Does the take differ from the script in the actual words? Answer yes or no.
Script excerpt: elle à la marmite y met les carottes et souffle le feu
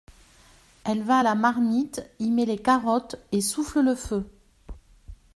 yes